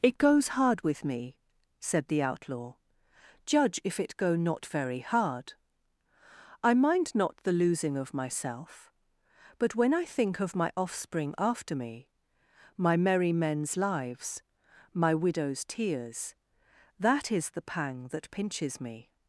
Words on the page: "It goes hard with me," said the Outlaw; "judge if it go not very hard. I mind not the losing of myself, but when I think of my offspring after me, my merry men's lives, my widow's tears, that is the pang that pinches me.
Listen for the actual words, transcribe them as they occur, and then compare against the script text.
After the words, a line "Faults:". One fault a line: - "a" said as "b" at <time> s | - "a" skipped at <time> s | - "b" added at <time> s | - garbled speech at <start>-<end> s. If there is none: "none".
"It goes hard with me," said the Outlaw; "judge if it go not very hard. I mind not the losing of myself, but when I think of my offspring after me, my merry men's lives, my widow's tears, that is the pang that pinches me.
Faults:
none